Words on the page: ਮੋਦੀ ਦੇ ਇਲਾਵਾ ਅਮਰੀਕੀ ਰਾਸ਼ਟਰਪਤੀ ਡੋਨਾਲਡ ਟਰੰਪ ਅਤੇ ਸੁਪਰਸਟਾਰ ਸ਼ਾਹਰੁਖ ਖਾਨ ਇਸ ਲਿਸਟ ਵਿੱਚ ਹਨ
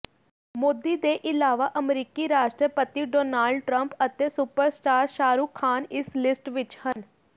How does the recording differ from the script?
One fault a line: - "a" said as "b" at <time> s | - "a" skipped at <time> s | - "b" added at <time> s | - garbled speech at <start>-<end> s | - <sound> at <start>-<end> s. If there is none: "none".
- dropout at 6.9-7.0 s